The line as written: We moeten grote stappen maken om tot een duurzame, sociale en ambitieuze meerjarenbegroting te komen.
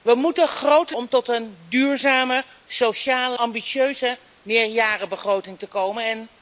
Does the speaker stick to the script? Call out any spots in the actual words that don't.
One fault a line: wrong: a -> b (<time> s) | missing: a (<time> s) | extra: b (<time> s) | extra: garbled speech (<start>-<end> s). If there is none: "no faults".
missing: stappen maken (1.0 s)
missing: en (3.4 s)